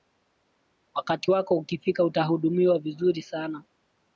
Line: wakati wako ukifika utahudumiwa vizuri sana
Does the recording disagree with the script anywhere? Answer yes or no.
no